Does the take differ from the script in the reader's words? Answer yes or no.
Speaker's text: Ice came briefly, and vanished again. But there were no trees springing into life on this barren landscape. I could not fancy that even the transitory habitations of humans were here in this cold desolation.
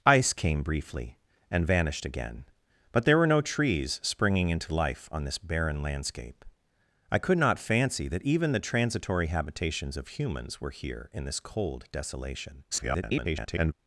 yes